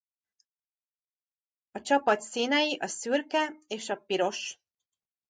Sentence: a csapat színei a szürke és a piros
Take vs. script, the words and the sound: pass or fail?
pass